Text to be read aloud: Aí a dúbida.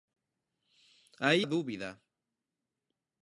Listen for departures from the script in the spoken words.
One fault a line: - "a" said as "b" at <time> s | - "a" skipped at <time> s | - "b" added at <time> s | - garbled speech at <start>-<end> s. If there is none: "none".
none